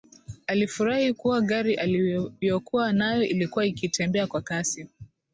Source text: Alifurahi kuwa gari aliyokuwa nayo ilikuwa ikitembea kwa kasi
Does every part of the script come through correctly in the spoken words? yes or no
yes